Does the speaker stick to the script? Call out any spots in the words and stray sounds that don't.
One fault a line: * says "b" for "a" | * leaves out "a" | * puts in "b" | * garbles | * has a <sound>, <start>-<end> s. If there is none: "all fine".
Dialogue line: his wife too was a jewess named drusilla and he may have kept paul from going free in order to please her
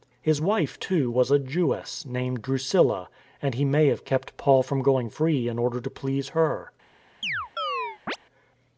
* has a chirp, 7.2-8.2 s